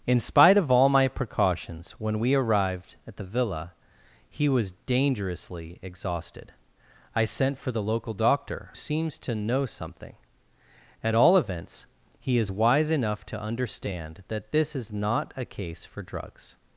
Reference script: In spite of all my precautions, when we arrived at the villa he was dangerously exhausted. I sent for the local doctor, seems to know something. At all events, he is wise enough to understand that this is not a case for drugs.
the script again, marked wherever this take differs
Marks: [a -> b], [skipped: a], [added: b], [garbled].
In spite of all my precautions, when we arrived at the villa he was dangerously exhausted. I sent for the local doctor, seems to know something. At all events, he is wise enough to understand that this is not a case for drugs.